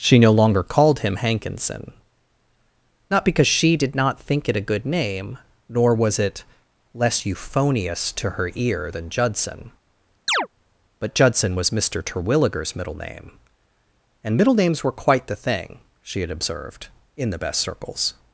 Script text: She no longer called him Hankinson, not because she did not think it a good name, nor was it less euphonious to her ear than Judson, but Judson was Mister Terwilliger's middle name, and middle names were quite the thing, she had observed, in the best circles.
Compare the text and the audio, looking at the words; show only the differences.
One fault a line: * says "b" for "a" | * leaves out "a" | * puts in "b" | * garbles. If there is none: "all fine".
all fine